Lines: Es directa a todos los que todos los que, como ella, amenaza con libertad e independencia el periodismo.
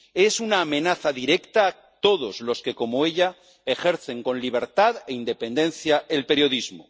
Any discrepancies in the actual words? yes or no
yes